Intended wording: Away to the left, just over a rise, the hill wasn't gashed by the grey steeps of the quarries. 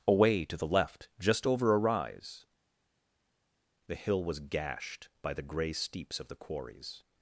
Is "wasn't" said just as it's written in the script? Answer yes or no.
no